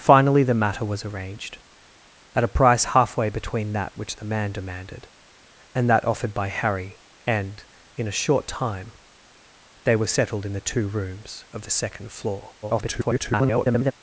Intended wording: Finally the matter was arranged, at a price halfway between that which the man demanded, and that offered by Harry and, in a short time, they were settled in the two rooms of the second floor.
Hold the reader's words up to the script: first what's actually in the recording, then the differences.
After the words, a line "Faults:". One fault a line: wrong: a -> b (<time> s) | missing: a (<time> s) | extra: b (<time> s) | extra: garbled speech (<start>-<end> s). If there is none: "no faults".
Finally the matter was arranged, at a price halfway between that which the man demanded, and that offered by Harry and, in a short time, they were settled in the two rooms of the second floor. [garbled]
Faults:
extra: garbled speech (12.6-13.9 s)